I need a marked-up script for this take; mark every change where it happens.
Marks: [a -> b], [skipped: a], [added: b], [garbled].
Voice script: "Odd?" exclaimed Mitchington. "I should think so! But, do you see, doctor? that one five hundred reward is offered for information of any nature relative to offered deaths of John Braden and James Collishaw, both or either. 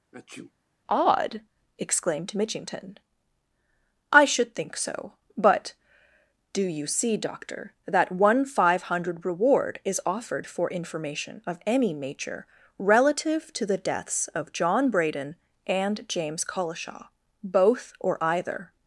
"Odd?" exclaimed Mitchington. "I should think so! But, do you see, doctor? that one five hundred reward is offered for information of any nature relative to [offered -> the] deaths of John Braden and James Collishaw, both or either.